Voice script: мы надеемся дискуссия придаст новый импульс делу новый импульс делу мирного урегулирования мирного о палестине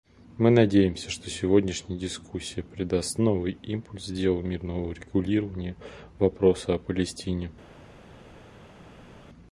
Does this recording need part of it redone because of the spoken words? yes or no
yes